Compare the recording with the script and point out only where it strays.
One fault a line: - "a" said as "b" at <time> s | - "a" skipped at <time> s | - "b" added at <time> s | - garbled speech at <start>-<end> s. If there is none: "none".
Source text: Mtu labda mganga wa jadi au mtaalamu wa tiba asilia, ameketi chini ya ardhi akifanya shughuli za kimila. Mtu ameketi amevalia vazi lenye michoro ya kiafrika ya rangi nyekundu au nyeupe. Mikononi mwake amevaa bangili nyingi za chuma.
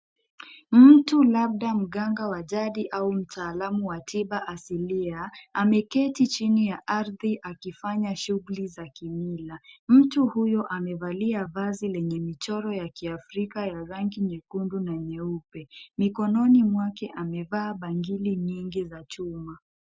- "ameketi" said as "huyo" at 10.3 s
- "au" said as "na" at 14.8 s